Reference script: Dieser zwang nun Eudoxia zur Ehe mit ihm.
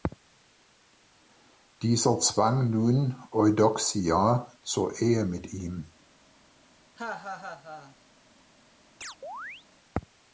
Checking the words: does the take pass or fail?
pass